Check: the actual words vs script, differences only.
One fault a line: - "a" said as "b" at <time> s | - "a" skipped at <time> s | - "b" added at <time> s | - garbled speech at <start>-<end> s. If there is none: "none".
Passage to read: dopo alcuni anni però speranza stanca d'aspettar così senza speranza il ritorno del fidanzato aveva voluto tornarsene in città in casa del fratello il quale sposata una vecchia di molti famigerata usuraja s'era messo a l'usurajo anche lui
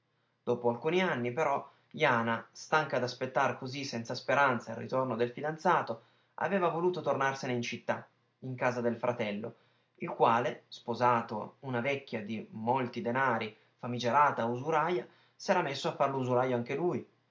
- "speranza" said as "jana" at 1.9 s
- "denari" added at 13.0 s
- "far" added at 15.9 s